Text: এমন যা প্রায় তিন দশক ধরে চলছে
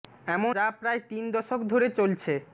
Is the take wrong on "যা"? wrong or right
right